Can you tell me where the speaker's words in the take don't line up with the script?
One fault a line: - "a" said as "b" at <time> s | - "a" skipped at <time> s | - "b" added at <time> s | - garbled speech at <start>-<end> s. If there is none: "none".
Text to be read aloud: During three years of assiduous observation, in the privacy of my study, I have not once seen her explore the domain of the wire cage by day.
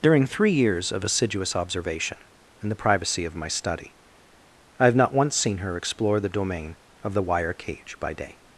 none